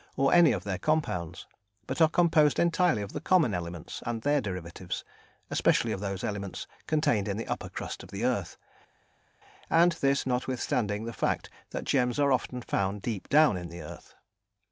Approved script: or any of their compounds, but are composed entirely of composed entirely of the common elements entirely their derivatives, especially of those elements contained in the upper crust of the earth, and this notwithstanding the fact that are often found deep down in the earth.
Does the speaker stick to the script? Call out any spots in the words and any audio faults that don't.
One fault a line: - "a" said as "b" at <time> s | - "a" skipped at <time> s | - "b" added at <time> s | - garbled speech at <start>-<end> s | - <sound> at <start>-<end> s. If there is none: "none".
- "composed entirely of" skipped at 3.1 s
- "entirely" said as "and" at 4.0 s
- "gems" added at 11.9 s